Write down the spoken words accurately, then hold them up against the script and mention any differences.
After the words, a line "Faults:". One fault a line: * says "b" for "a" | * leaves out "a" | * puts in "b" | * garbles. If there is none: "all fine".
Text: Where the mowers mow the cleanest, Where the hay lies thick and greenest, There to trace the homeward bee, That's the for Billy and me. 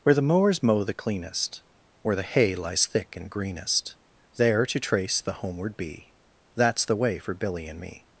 Where the mowers mow the cleanest, Where the hay lies thick and greenest, There to trace the homeward bee, That's the way for Billy and me.
Faults:
* puts in "way"